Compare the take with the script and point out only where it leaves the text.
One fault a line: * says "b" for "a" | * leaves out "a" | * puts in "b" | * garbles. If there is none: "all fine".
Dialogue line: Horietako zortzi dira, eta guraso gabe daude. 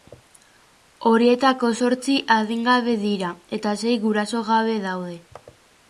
* puts in "adingabe"
* puts in "sei"